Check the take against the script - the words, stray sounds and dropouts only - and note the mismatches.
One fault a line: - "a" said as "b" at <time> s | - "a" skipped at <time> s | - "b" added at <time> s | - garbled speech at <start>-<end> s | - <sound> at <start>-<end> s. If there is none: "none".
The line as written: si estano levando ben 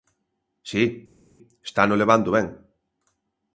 none